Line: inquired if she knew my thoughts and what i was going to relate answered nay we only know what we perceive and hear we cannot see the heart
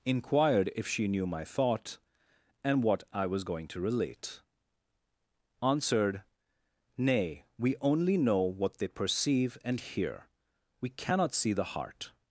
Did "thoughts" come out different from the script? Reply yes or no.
yes